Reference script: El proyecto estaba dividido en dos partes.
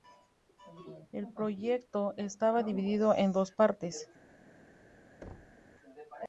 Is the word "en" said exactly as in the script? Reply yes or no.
yes